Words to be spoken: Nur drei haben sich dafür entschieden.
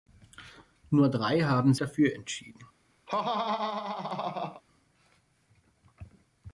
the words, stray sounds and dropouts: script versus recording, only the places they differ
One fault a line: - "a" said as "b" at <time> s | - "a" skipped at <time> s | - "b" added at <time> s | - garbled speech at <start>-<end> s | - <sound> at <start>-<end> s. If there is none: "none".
- "sich" skipped at 1.8 s
- laugh at 3.1-4.6 s